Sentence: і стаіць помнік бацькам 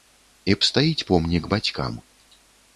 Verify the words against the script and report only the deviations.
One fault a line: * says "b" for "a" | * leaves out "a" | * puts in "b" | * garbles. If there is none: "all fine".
all fine